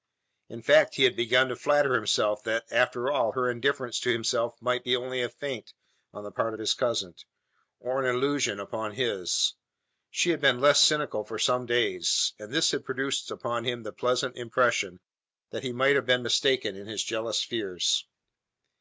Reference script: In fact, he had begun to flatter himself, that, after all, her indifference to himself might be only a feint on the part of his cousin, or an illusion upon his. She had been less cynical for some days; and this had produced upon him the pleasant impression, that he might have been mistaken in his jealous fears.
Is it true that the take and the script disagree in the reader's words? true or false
false